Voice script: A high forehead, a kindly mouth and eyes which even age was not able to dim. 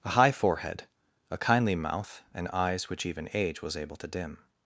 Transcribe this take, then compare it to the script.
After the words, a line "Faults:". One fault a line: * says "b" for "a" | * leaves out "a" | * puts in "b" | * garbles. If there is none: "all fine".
A high forehead, a kindly mouth and eyes which even age was able to dim.
Faults:
* leaves out "not"